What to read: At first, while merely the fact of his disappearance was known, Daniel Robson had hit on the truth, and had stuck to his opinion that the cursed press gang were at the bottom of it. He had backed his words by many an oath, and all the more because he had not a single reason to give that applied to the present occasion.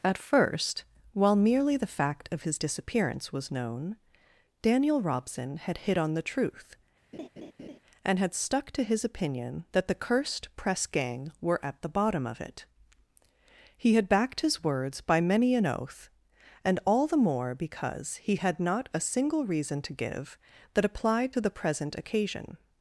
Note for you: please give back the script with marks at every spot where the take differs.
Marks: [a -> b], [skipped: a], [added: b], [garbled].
At first, while merely the fact of his disappearance was known, Daniel Robson had hit on the truth, and had stuck to his opinion that the cursed press gang were at the bottom of it. He had backed his words by many an oath, and all the more because he had not a single reason to give that applied to the present occasion.